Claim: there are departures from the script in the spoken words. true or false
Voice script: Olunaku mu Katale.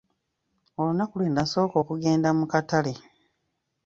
true